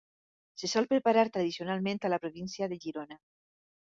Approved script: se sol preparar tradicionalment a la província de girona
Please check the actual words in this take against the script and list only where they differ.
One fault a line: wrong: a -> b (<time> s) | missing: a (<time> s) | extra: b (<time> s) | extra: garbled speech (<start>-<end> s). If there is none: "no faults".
no faults